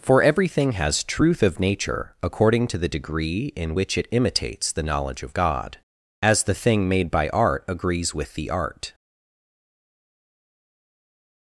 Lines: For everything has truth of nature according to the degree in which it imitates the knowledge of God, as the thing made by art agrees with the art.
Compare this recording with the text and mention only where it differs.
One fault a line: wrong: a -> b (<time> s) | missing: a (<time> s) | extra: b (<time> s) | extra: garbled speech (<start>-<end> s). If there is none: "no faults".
no faults